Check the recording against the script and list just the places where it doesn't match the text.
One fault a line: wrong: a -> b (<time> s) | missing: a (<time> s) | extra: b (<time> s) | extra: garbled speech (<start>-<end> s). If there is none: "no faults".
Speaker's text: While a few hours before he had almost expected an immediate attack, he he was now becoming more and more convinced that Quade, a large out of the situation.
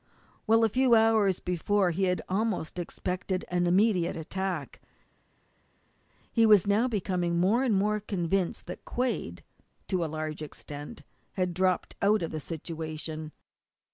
missing: he (6.4 s)
extra: to (9.9 s)
extra: extent had dropped (10.4 s)